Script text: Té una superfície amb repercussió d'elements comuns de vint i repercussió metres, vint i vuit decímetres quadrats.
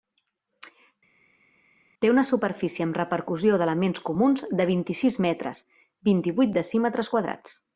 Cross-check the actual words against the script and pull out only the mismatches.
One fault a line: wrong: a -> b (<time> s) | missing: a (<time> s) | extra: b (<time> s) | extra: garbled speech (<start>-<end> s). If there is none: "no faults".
wrong: repercussió -> sis (5.0 s)